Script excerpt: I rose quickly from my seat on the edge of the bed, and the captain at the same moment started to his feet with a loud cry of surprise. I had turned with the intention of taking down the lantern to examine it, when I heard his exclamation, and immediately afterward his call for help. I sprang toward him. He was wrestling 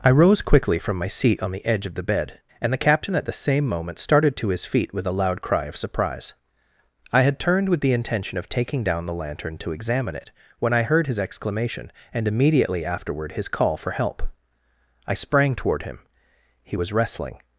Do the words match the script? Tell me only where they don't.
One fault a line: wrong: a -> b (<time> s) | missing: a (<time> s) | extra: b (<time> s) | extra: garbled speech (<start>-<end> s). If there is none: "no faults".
no faults